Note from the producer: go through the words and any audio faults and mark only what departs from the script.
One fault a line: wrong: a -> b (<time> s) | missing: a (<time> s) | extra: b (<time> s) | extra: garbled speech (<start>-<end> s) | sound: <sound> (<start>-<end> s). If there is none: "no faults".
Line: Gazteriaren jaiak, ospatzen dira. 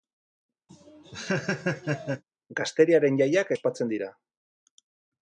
sound: laugh (0.7-2.2 s)